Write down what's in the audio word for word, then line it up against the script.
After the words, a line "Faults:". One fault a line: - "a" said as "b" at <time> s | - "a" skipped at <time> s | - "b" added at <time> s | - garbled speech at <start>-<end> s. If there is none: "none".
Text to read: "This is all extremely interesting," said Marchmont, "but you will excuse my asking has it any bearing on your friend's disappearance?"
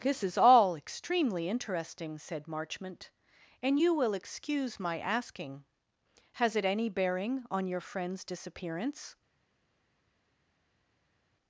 "This is all extremely interesting," said Marchmont, "and you will excuse my asking has it any bearing on your friend's disappearance?"
Faults:
- "but" said as "and" at 3.6 s